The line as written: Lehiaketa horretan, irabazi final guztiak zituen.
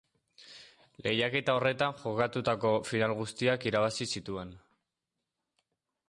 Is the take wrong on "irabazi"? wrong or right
wrong